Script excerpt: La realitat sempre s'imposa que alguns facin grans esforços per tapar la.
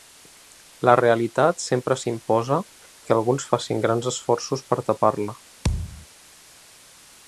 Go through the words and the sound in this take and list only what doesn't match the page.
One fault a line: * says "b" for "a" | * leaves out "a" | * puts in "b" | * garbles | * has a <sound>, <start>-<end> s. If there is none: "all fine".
* has a thud, 5.6-6.1 s